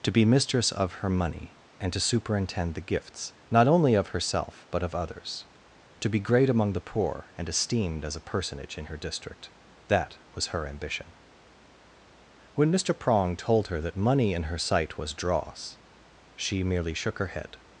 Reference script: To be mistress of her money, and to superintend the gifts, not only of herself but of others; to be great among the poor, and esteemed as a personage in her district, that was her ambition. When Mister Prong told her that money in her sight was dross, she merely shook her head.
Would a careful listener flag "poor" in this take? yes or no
no